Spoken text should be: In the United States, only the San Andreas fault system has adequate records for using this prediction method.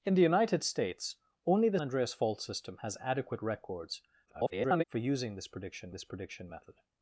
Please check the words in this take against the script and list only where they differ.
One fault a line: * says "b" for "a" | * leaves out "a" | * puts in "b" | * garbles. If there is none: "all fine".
* leaves out "San"
* garbles
* puts in "this prediction"